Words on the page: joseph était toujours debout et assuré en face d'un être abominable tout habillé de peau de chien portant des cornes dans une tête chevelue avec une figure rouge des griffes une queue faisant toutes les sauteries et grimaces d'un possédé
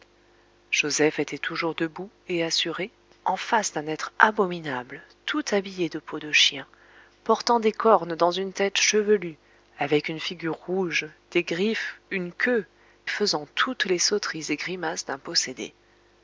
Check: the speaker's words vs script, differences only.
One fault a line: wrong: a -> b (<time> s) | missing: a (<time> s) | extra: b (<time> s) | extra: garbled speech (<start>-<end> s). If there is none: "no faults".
no faults